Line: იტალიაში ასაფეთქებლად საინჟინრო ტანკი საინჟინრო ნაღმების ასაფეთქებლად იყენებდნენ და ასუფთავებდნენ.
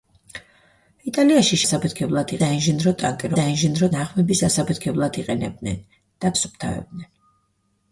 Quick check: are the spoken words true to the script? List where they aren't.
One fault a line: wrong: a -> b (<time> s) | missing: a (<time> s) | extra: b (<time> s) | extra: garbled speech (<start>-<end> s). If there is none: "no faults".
no faults